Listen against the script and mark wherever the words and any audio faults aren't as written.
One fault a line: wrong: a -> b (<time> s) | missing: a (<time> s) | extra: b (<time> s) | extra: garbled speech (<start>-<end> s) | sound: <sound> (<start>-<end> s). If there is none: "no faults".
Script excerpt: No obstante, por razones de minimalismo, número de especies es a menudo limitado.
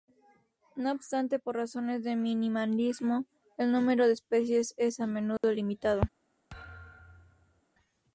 extra: el (3.6 s)
sound: dropout (5.4-5.4 s)
sound: thud (6.5-7.6 s)